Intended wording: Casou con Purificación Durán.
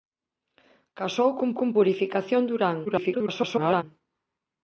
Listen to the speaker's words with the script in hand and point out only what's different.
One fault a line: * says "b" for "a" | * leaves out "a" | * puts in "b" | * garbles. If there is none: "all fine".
* puts in "con"
* garbles